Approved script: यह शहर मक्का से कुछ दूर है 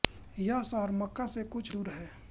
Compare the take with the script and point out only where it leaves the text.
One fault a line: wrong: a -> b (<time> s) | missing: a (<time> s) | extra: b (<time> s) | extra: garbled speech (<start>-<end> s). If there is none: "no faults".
no faults